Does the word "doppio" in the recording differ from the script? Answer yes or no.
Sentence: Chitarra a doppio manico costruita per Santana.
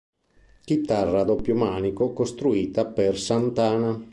no